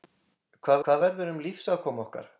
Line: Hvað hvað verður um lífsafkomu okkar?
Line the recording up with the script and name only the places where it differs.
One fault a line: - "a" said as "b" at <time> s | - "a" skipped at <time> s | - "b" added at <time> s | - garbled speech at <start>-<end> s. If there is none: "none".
none